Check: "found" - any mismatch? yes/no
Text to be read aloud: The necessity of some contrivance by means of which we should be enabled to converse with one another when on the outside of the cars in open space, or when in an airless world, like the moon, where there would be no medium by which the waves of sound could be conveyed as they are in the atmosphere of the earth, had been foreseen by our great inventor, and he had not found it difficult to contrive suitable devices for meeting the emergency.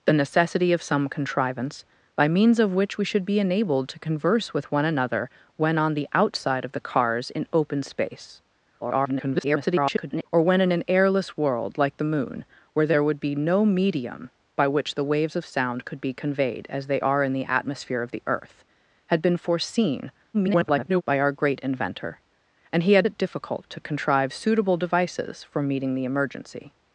yes